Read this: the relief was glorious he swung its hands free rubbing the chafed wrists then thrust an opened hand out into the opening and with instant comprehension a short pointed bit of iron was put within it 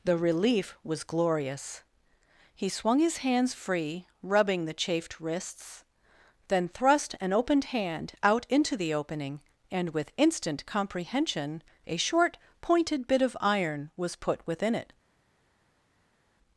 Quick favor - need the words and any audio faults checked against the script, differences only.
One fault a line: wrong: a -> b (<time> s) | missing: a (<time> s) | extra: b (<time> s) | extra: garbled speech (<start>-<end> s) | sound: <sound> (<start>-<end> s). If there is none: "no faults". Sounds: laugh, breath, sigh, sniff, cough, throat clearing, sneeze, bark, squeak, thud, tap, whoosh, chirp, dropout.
wrong: its -> his (3.0 s)